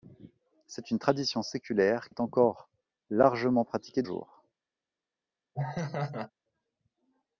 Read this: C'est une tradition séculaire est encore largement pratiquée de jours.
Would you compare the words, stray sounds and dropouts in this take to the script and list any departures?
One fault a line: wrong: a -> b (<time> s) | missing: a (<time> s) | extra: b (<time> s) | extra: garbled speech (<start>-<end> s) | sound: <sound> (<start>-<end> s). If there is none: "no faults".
sound: laugh (5.5-6.3 s)